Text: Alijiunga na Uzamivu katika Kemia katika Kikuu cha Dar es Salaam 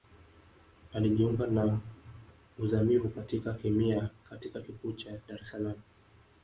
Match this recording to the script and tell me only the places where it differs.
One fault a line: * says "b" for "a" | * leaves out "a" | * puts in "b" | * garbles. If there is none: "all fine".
all fine